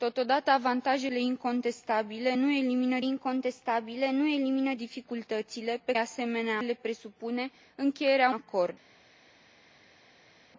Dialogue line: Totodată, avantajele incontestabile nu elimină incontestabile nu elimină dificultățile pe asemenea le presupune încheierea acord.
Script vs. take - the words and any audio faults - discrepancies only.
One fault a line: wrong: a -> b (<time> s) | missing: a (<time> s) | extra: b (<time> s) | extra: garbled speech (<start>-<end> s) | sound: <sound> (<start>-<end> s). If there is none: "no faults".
no faults